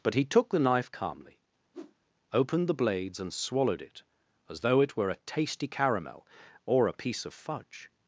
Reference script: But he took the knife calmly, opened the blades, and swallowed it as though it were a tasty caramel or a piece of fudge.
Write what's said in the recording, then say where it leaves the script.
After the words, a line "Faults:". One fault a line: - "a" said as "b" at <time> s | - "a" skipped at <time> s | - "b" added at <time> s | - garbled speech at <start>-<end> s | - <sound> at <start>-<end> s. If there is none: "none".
But he took the knife calmly, opened the blades, and swallowed it as though it were a tasty caramel or a piece of fudge.
Faults:
- whoosh at 1.7-2.0 s